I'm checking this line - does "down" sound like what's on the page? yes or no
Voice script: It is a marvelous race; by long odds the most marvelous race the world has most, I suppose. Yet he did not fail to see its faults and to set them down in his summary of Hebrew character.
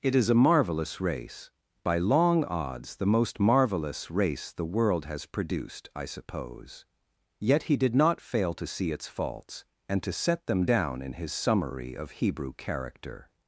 yes